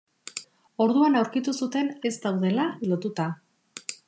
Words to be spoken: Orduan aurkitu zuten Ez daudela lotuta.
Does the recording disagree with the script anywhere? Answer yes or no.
no